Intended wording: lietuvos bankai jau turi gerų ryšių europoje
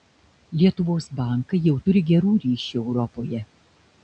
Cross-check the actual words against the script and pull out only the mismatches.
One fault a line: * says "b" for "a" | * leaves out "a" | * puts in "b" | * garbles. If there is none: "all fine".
all fine